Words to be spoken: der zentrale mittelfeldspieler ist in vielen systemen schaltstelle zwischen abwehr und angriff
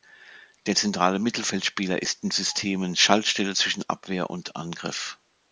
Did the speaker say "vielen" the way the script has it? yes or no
no